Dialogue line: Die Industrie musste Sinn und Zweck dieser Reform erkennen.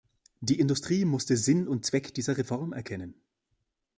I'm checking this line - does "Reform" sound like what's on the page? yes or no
yes